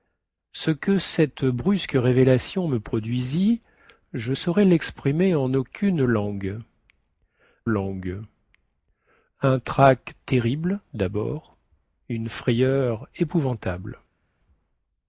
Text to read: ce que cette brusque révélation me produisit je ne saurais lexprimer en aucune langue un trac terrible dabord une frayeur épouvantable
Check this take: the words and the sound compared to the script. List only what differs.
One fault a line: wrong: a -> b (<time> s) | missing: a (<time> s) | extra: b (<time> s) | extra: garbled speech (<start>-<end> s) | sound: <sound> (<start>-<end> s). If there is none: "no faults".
missing: ne (4.3 s)
extra: langue (7.6 s)